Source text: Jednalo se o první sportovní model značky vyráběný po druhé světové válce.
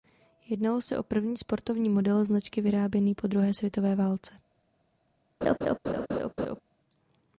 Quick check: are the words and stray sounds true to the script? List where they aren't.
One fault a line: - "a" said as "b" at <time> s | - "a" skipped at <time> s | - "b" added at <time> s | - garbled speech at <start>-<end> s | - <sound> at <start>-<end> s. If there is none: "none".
- laugh at 5.4-6.6 s